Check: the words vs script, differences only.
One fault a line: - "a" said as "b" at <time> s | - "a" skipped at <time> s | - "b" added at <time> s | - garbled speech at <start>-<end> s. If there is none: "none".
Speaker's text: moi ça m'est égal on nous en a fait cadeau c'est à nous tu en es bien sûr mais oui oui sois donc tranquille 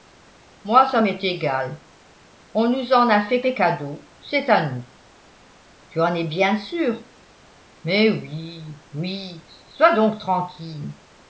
- "fait" added at 3.4 s